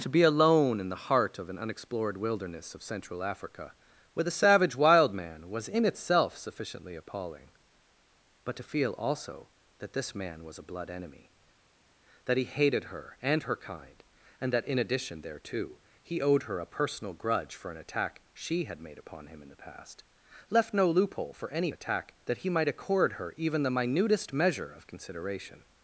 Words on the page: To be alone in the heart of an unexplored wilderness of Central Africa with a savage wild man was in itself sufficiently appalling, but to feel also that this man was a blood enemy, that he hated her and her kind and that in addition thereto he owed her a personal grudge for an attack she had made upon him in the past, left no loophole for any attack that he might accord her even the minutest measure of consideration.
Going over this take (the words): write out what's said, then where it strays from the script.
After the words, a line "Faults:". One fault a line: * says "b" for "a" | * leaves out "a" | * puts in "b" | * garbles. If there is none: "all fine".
To be alone in the heart of an unexplored wilderness of Central Africa with a savage wild man was in itself sufficiently appalling, but to feel also that this man was a blood enemy, that he hated her and her kind and that in addition thereto he owed her a personal grudge for an attack she had made upon him in the past, left no loophole for any attack that he might accord her even the minutest measure of consideration.
Faults:
all fine